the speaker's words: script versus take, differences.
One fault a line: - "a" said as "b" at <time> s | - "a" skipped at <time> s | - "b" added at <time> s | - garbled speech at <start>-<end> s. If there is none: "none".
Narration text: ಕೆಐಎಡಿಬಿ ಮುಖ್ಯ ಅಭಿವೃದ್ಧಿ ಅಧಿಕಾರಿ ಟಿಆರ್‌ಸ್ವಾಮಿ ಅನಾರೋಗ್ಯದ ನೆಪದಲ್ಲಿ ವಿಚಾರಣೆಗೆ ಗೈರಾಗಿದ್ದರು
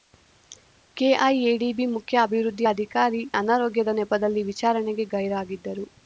- "ಟಿಆರ್‌ಸ್ವಾಮಿ" skipped at 3.2 s